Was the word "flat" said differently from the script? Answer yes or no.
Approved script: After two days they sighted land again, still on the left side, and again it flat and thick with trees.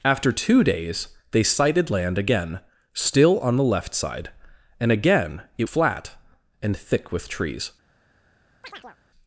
no